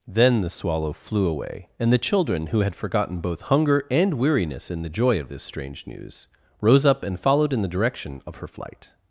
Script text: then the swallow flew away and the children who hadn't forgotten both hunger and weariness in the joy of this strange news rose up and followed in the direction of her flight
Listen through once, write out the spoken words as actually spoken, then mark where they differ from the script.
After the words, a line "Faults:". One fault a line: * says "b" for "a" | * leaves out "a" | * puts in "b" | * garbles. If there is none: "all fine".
then the swallow flew away and the children who had forgotten both hunger and weariness in the joy of this strange news rose up and followed in the direction of her flight
Faults:
* says "had" for "hadn't"